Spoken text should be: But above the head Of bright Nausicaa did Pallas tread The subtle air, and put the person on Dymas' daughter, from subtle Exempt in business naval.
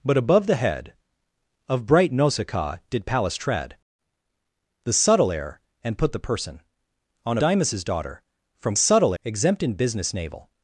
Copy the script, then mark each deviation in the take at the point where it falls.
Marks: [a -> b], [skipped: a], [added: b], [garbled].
But above the head Of bright Nausicaa did Pallas tread The subtle air, and put the person on Dymas' daughter, from subtle Exempt in business naval.